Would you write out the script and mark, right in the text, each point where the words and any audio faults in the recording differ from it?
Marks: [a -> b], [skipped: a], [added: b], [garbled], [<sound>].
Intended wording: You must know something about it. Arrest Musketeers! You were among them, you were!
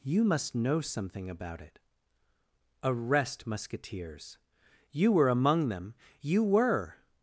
You must know something about it. Arrest Musketeers! You were among them, you were!